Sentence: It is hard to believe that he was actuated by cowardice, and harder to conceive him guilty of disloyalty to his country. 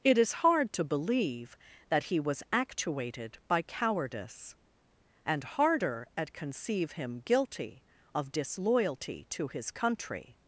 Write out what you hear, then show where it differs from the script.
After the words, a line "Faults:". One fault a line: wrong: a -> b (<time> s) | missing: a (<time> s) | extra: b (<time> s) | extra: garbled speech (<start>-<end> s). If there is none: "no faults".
It is hard to believe that he was actuated by cowardice, and harder at conceive him guilty of disloyalty to his country.
Faults:
wrong: to -> at (6.2 s)